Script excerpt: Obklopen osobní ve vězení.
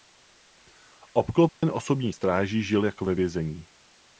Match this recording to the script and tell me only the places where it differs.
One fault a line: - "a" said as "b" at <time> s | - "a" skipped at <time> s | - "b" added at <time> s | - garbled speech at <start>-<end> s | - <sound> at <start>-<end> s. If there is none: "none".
- dropout at 1.5-1.6 s
- "stráží žil jako" added at 2.1 s